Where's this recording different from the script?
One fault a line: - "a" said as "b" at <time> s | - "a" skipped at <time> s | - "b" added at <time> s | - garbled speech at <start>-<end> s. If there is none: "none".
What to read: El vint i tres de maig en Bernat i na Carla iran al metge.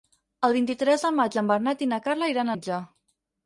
- "al" skipped at 2.5 s